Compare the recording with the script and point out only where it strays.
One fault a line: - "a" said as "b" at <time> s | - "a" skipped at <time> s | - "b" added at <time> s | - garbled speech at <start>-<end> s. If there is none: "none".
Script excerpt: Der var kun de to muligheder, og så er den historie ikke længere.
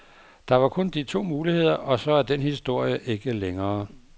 none